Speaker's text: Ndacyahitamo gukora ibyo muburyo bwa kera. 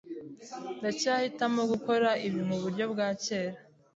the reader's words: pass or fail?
fail